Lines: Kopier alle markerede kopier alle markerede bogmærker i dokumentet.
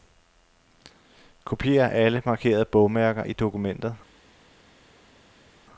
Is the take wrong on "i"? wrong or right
right